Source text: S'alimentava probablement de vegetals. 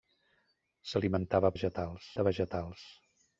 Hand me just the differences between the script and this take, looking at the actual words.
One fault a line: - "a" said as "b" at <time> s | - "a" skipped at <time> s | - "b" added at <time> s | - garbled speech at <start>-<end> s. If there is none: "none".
- "probablement" said as "vegetals" at 1.5 s